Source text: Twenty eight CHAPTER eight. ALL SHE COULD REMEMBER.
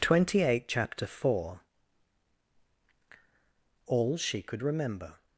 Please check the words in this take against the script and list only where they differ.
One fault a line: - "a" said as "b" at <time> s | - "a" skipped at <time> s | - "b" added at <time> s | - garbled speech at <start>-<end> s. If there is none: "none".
- "eight" said as "four" at 1.1 s